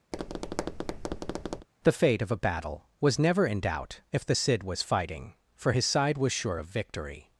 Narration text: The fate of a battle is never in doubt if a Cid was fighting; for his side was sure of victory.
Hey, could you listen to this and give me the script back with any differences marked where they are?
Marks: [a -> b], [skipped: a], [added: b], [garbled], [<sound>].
[tap] The fate of a battle [is -> was] never in doubt if [a -> the] Cid was fighting; for his side was sure of victory.